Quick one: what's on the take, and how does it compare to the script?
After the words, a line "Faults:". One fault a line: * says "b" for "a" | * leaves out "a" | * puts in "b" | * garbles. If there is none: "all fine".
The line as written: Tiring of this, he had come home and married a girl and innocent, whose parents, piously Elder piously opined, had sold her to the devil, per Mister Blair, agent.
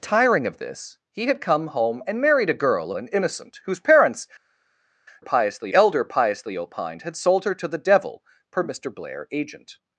Tiring of this, he had come home and married a girl and innocent, whose parents, piously Elder piously opined, had sold her to the devil, per Mister Blair, agent.
Faults:
all fine